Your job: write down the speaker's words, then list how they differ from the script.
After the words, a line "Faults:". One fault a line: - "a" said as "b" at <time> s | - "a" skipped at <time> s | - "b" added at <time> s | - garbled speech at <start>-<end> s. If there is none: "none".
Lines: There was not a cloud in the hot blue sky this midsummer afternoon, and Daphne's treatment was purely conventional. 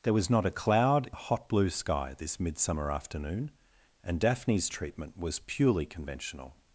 There was not a cloud the hot blue sky this midsummer afternoon, and Daphne's treatment was purely conventional.
Faults:
- "in" skipped at 1.1 s